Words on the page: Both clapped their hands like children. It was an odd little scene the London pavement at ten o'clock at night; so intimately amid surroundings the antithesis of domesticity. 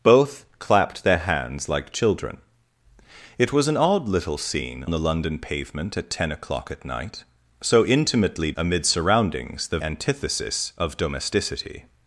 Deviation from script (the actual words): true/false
false